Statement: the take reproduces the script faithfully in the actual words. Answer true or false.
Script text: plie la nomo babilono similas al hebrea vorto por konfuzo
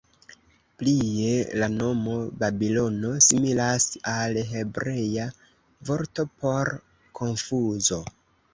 true